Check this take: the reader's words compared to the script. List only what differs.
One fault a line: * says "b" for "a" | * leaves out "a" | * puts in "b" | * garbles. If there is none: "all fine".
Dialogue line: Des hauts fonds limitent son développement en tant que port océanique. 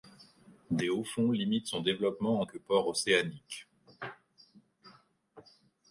* leaves out "tant"